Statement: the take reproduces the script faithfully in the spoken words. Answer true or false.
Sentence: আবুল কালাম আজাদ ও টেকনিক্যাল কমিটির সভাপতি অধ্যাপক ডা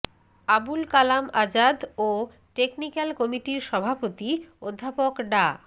true